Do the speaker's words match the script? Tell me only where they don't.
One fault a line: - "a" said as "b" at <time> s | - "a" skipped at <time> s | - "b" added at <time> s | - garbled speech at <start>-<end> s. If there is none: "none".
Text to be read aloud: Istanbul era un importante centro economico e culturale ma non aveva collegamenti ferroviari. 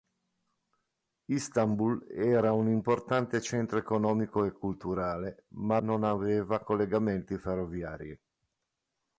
none